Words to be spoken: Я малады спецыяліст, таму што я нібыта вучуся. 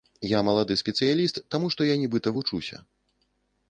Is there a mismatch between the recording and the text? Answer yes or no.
no